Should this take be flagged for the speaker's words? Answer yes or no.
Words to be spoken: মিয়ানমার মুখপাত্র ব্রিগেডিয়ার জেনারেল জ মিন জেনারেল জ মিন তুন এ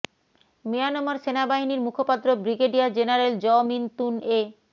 yes